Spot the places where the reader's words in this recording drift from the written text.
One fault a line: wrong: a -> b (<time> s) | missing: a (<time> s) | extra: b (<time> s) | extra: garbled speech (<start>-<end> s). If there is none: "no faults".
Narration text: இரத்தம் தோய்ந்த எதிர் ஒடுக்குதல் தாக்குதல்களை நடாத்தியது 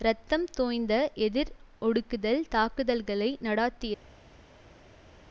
no faults